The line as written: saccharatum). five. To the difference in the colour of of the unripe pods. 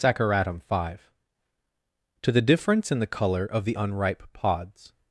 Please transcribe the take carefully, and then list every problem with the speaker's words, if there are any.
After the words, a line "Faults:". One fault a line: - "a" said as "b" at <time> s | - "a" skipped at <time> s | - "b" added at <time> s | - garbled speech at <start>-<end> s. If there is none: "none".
saccharatum). five. To the difference in the colour of the unripe pods.
Faults:
- "of" skipped at 3.7 s